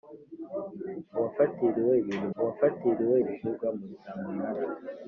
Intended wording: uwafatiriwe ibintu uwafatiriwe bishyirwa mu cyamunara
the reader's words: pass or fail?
pass